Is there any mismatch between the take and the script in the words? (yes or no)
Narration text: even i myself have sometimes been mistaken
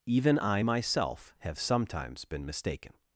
no